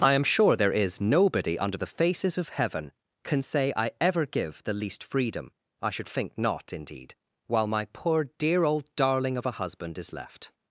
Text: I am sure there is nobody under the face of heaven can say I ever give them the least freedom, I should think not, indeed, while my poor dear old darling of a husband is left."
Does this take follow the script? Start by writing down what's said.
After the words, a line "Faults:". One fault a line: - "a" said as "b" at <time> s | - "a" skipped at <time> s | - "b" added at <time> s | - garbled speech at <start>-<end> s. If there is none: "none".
I am sure there is nobody under the faces of heaven can say I ever give the least freedom, I should think not, indeed, while my poor dear old darling of a husband is left."
Faults:
- "face" said as "faces" at 1.9 s
- "them" skipped at 4.6 s